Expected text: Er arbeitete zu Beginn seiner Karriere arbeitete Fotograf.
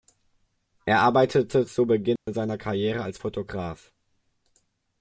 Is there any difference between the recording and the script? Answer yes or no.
yes